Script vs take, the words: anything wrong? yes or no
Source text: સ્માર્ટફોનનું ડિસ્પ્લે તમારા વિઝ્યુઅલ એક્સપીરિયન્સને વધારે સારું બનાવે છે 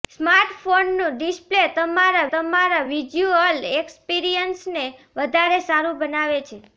yes